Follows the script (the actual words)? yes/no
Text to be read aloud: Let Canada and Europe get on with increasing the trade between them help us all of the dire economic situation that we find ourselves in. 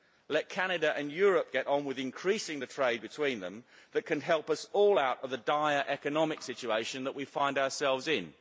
no